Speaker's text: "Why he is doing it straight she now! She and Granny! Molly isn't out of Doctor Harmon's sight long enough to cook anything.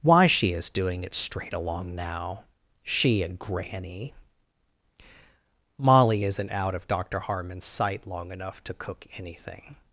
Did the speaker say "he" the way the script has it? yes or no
no